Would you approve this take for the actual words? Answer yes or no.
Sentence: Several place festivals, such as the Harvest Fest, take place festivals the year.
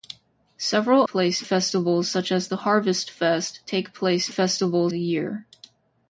yes